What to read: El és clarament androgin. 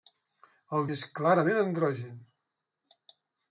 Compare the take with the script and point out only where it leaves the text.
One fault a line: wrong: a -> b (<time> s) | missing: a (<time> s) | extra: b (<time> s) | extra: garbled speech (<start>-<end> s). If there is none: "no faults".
no faults